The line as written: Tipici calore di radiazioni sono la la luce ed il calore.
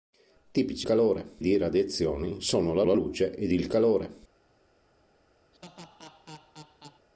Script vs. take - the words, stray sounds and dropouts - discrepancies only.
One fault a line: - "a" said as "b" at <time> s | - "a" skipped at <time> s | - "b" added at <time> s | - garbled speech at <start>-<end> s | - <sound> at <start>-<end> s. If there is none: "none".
- laugh at 5.5-7.1 s